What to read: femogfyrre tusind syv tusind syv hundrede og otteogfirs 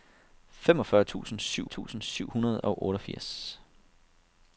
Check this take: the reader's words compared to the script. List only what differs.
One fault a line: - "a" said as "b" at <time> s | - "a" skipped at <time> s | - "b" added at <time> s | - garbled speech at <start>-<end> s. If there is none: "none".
none